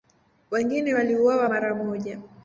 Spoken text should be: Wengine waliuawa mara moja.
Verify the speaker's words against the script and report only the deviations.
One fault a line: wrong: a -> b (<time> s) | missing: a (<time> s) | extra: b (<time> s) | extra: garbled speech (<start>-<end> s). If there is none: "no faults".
no faults